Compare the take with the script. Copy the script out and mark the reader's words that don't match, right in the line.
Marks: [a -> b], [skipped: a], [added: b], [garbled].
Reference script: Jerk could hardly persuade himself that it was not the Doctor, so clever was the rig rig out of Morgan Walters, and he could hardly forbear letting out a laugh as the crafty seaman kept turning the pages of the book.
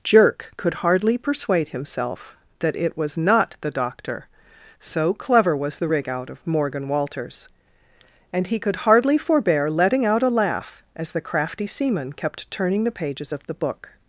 Jerk could hardly persuade himself that it was not the Doctor, so clever was the rig [skipped: rig] out of Morgan Walters, and he could hardly forbear letting out a laugh as the crafty seaman kept turning the pages of the book.